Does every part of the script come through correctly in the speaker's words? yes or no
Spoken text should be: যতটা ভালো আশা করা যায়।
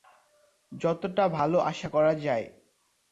yes